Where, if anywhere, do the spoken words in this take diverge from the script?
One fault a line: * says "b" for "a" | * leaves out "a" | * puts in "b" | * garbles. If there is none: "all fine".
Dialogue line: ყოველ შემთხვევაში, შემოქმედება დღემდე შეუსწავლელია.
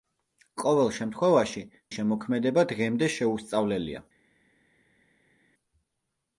all fine